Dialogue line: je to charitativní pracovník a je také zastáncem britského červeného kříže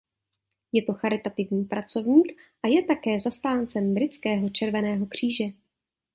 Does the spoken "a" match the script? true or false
true